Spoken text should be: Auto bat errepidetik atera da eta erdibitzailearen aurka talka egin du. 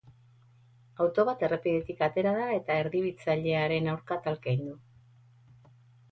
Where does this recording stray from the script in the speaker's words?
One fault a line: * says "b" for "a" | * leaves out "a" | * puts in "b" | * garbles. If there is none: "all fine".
all fine